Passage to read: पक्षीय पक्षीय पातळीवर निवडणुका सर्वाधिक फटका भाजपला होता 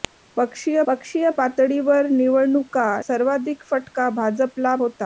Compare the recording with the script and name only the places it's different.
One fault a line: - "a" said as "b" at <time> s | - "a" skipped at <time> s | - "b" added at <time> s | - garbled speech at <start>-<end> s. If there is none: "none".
none